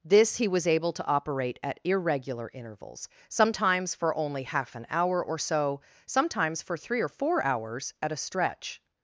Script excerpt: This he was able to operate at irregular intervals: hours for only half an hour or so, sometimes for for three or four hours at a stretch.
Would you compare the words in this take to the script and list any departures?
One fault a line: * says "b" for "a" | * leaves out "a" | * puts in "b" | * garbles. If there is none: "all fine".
* says "sometimes" for "hours"
* leaves out "for"